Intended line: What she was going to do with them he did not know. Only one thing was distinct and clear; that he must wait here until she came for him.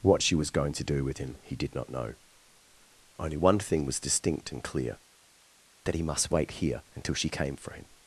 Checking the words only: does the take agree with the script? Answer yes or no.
no